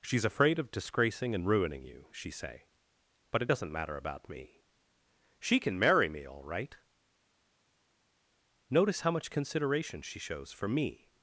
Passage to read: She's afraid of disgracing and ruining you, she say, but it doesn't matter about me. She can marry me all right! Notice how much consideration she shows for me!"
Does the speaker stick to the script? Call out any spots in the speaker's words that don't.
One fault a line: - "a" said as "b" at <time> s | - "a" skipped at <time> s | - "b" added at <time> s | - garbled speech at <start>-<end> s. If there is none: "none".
none